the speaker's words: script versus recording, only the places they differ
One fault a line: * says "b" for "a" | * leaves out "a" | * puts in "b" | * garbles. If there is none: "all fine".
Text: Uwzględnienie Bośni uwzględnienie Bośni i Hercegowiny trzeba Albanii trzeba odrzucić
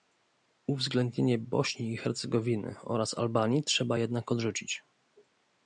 * leaves out "uwzględnienie Bośni"
* says "oraz" for "trzeba"
* puts in "jednak"